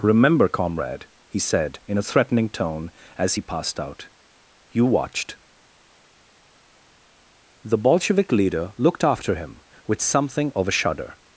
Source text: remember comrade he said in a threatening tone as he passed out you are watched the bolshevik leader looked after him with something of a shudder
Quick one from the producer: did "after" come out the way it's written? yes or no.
yes